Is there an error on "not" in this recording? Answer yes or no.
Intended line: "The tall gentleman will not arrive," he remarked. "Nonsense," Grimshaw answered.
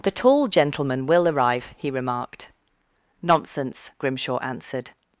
yes